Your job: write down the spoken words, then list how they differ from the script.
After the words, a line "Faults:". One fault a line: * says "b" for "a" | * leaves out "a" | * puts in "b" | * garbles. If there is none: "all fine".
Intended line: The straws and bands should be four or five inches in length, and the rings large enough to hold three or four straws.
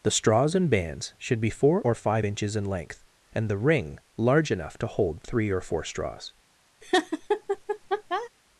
The straws and bands should be four or five inches in length, and the ring large enough to hold three or four straws.
Faults:
* says "ring" for "rings"